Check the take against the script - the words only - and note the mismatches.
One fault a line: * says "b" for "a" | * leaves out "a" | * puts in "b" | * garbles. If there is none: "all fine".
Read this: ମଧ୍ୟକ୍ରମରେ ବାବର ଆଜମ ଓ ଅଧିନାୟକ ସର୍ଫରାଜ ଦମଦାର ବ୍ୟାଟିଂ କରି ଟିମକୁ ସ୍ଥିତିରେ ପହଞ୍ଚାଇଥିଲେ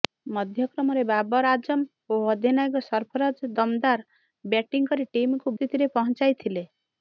all fine